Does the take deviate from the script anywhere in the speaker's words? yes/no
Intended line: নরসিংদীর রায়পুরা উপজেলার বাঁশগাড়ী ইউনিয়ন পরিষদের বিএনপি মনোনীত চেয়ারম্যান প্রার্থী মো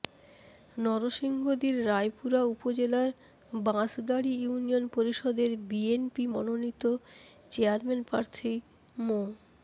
no